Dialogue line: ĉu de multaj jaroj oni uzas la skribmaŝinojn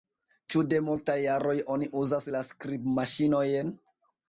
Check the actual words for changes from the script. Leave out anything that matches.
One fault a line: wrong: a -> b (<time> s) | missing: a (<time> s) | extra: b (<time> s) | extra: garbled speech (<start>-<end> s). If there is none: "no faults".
no faults